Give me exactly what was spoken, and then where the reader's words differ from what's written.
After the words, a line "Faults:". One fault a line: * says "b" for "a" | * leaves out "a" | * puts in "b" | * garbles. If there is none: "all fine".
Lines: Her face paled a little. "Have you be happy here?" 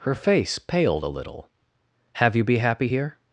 Her face paled a little. "Have you be happy here?"
Faults:
all fine